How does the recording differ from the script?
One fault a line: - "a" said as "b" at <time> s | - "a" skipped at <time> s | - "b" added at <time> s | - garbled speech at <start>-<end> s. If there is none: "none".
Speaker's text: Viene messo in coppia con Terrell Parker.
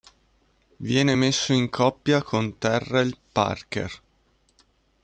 none